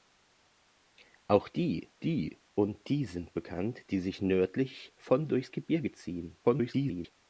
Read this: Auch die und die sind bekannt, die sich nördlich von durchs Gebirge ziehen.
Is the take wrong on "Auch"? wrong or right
right